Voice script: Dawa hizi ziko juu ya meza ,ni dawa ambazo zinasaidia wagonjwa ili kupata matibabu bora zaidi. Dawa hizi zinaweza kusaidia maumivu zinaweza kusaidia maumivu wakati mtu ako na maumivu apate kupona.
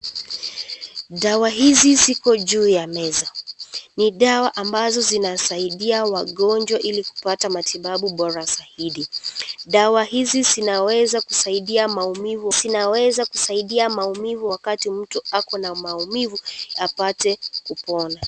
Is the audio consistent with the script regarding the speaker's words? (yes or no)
yes